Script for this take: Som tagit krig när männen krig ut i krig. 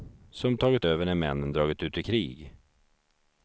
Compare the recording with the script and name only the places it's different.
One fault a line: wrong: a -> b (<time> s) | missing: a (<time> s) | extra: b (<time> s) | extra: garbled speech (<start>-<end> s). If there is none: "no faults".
wrong: krig -> över (0.8 s)
wrong: krig -> dragit (1.5 s)